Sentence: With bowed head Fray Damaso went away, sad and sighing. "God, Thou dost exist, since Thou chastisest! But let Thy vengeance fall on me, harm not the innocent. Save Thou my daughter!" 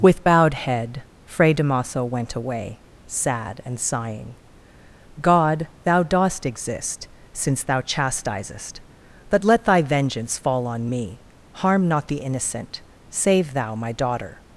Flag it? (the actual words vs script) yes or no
no